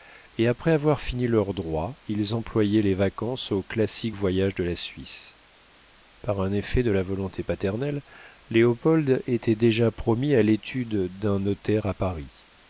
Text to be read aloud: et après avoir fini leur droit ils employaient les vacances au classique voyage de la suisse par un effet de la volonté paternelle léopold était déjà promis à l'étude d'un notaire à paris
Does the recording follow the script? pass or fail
pass